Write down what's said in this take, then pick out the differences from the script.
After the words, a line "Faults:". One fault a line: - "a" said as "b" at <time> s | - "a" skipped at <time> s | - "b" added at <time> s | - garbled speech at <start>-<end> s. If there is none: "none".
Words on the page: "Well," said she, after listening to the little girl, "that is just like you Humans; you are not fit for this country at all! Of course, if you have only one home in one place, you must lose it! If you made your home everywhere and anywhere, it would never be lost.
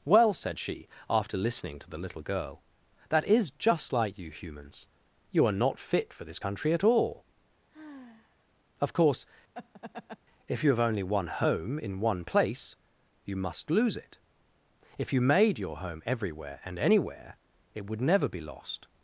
"Well," said she, after listening to the little girl, "that is just like you Humans; you are not fit for this country at all! Of course, if you have only one home in one place, you must lose it! If you made your home everywhere and anywhere, it would never be lost.
Faults:
none